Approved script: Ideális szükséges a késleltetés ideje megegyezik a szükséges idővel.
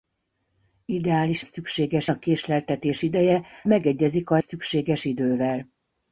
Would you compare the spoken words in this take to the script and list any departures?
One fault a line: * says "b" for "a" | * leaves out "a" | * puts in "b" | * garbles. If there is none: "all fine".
all fine